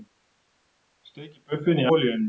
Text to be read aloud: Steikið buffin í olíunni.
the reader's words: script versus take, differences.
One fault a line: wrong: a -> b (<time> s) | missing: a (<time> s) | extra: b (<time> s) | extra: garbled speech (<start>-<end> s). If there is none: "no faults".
no faults